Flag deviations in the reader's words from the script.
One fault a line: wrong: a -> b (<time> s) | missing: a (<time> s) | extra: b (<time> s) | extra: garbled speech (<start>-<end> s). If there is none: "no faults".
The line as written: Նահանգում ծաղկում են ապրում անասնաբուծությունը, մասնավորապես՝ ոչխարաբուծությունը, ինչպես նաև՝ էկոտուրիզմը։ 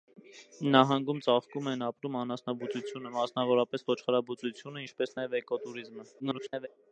extra: garbled speech (6.2-6.7 s)